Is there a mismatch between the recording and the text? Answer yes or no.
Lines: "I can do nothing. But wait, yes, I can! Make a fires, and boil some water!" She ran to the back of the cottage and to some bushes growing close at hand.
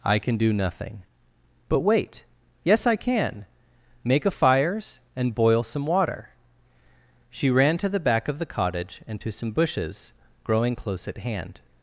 no